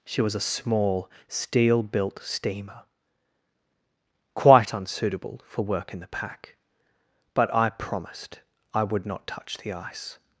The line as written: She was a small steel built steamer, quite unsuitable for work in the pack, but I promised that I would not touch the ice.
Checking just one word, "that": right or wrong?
wrong